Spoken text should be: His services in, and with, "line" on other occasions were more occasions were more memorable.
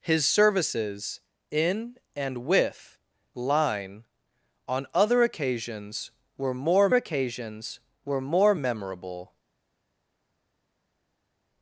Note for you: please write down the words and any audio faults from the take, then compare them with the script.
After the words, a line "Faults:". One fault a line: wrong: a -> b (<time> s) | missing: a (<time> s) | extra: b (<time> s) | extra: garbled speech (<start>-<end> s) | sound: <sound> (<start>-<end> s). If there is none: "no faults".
His services in, and with, "line" on other occasions were more occasions were more memorable.
Faults:
no faults